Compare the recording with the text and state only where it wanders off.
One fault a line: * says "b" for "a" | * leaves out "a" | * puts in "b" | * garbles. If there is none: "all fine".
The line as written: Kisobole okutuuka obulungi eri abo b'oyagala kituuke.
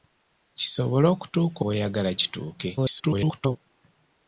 * leaves out "obulungi eri abo"
* garbles